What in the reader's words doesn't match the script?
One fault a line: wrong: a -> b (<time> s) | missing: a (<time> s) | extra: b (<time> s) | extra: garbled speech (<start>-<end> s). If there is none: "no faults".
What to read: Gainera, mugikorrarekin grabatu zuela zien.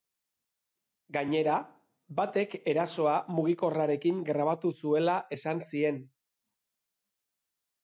extra: batek erasoa (2.2 s)
extra: esan (5.4 s)